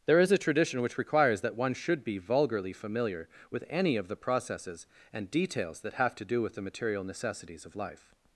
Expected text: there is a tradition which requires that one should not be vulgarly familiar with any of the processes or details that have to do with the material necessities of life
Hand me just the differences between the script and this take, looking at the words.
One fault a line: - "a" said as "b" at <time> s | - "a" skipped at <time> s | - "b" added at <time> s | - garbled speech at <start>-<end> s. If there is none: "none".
- "not" skipped at 2.0 s
- "or" said as "and" at 5.1 s